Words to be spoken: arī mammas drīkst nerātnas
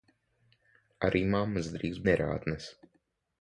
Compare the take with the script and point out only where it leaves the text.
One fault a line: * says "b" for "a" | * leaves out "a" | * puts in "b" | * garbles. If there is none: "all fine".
all fine